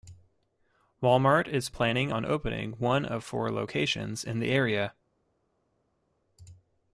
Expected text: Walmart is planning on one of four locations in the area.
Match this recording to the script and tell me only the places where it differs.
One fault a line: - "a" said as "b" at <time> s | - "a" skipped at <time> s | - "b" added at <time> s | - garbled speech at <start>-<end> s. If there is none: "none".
- "opening" added at 2.2 s